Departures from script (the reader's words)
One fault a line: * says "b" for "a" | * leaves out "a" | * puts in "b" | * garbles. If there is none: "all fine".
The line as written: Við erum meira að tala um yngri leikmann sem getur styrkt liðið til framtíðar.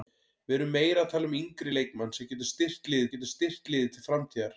* puts in "getur styrkt liðið"